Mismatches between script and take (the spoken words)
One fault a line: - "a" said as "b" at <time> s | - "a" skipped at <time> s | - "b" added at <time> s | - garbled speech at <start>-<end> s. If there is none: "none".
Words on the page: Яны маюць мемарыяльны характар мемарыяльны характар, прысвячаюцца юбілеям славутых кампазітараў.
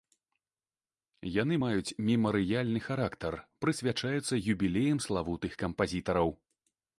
- "мемарыяльны характар" skipped at 3.3 s